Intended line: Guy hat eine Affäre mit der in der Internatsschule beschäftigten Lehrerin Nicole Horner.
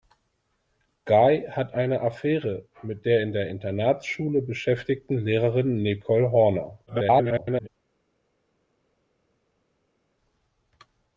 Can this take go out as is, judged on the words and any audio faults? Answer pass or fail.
fail